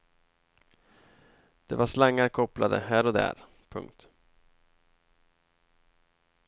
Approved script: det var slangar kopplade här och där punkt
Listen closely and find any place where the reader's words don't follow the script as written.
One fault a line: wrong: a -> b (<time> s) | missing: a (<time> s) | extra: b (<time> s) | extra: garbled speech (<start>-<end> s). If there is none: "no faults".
no faults